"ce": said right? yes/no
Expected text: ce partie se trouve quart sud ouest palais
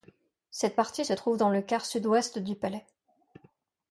no